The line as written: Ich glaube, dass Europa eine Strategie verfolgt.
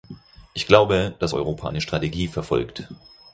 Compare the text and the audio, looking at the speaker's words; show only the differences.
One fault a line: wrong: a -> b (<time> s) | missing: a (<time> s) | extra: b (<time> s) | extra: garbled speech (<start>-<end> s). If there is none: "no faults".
no faults